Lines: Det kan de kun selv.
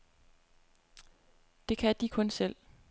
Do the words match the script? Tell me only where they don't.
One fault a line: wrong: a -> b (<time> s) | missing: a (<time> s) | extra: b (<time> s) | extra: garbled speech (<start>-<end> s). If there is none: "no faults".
no faults